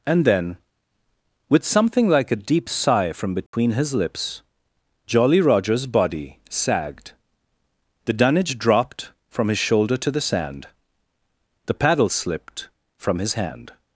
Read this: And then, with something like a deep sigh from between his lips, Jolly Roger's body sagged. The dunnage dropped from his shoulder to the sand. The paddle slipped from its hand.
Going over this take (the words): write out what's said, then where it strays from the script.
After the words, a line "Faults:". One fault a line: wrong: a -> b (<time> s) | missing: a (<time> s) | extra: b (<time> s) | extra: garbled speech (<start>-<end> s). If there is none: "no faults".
And then, with something like a deep sigh from between his lips, Jolly Roger's body sagged. The dunnage dropped from his shoulder to the sand. The paddle slipped from his hand.
Faults:
wrong: its -> his (13.2 s)